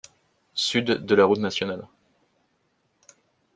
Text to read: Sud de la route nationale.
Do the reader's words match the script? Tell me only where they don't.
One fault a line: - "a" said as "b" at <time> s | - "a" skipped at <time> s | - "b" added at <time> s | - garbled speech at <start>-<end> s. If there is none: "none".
none